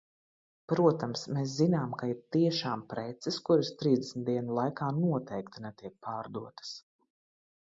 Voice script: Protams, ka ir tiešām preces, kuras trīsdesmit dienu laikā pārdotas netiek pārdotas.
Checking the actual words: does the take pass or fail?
fail